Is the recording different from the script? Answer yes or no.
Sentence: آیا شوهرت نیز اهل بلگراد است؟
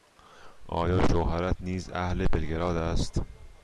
no